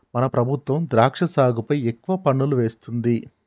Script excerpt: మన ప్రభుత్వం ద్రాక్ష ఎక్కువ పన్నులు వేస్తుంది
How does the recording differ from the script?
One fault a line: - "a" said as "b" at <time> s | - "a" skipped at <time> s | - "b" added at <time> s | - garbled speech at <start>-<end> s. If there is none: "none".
- "సాగుపై" added at 1.3 s